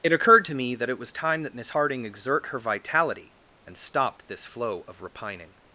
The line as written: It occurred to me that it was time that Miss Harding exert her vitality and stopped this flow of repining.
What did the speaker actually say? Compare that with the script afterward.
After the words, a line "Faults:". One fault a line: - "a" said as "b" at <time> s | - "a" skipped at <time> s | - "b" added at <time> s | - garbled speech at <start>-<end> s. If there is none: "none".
It occurred to me that it was time that Miss Harding exert her vitality and stopped this flow of repining.
Faults:
none